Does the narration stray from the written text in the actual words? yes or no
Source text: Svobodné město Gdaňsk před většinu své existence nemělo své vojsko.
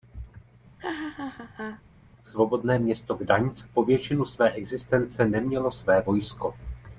yes